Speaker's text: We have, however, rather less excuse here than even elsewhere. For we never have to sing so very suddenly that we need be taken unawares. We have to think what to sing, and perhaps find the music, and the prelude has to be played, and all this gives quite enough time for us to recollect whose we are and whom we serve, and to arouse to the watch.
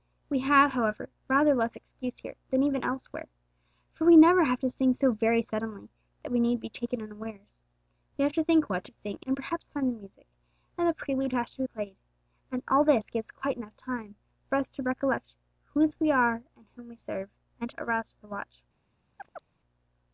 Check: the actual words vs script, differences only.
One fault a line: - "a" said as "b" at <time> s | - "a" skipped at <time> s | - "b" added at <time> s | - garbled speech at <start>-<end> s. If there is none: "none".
none